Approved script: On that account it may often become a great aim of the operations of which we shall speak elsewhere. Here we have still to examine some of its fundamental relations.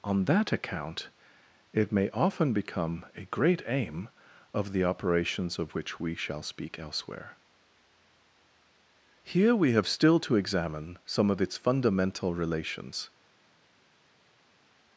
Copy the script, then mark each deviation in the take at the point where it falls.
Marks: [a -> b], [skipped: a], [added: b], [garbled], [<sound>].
On that account it may often become a great aim of the operations of which we shall speak elsewhere. Here we have still to examine some of its fundamental relations.